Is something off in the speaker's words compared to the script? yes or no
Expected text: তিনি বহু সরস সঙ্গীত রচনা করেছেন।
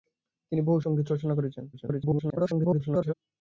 yes